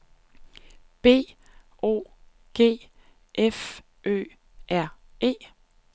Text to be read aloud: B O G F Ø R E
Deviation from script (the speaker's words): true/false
false